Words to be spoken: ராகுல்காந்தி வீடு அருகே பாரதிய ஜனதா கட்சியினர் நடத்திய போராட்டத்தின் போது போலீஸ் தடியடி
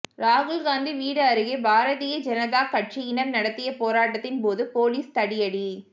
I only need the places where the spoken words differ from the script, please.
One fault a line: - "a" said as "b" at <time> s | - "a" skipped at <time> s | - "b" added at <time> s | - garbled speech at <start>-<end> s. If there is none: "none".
none